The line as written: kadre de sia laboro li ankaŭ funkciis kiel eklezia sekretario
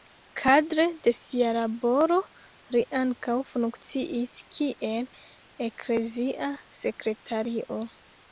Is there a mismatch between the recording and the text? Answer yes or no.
no